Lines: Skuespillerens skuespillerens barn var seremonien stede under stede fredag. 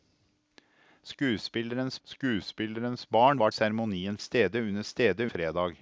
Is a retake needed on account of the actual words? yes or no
no